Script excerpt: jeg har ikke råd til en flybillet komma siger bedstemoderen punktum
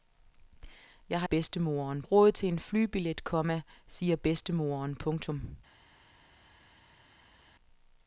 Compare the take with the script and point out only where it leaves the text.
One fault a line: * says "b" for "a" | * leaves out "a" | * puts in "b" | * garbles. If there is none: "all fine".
* says "bedstemoderen" for "ikke"